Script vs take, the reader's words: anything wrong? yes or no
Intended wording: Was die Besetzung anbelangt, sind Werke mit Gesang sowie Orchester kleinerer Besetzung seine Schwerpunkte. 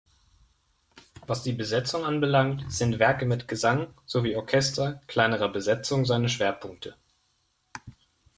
no